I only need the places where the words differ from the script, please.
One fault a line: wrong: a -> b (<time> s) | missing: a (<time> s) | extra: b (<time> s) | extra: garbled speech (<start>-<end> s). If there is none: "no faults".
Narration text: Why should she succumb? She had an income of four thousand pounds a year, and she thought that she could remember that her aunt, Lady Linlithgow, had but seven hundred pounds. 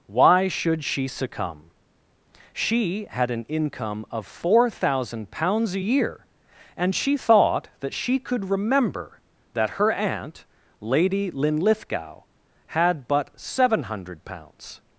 no faults